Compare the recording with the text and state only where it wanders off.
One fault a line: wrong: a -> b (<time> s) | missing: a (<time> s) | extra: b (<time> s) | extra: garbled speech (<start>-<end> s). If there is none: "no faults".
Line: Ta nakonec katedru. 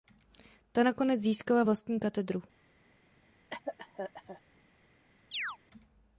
extra: získala vlastní (1.2 s)